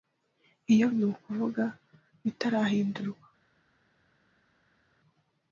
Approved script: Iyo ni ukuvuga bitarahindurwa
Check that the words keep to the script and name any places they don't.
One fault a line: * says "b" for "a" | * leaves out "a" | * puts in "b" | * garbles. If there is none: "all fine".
all fine